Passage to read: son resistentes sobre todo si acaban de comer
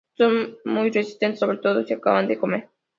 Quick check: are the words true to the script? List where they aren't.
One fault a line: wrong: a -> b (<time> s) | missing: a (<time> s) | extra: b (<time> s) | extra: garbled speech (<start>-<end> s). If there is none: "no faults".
extra: muy (0.6 s)